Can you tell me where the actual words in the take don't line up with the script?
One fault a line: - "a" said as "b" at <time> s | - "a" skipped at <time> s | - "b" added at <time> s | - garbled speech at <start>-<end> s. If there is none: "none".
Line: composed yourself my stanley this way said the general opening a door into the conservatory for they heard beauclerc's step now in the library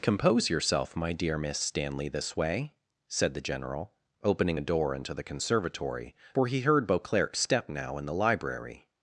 - "composed" said as "compose" at 0.0 s
- "dear miss" added at 1.1 s
- "they" said as "he" at 6.5 s